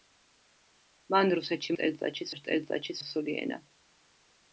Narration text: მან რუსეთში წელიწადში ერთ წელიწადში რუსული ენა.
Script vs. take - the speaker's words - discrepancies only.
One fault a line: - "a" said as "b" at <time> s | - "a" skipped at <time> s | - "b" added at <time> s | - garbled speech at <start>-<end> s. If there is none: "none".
none